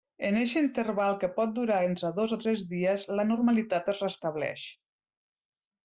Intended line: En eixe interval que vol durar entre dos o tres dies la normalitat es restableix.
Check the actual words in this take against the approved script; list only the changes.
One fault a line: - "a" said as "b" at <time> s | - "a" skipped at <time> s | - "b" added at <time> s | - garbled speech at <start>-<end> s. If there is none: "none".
- "vol" said as "pot" at 1.4 s